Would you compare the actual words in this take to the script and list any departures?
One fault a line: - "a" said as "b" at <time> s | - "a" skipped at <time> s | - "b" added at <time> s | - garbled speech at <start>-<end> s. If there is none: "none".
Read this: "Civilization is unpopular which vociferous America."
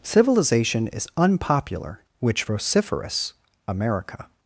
none